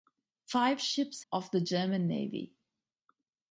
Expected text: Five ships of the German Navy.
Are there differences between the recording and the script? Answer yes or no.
no